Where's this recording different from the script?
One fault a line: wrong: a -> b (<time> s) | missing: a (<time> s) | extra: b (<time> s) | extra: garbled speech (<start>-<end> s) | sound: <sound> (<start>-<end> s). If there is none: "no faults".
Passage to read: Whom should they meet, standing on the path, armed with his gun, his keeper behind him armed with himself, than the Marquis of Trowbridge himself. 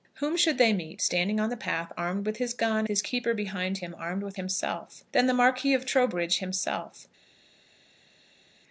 no faults